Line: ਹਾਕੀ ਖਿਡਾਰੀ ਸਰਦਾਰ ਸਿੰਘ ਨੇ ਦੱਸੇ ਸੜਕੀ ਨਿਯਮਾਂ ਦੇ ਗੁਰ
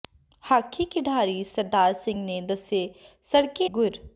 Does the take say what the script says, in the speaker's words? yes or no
no